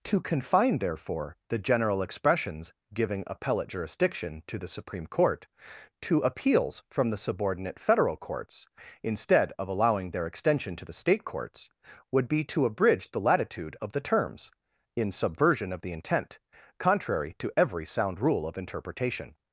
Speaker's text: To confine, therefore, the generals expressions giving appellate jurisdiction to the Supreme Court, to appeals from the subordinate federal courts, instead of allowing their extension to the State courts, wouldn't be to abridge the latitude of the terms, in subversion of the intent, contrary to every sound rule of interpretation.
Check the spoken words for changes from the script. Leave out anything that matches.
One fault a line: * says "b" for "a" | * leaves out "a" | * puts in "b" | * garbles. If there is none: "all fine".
* says "general" for "generals"
* says "would" for "wouldn't"